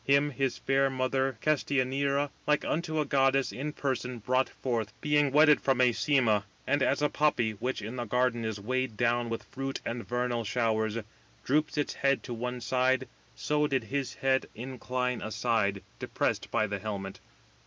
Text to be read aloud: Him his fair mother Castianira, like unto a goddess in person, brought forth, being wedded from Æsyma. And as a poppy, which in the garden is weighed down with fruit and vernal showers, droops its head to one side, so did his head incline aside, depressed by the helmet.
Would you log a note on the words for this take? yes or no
no